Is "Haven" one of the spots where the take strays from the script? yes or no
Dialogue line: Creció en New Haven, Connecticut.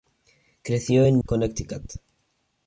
yes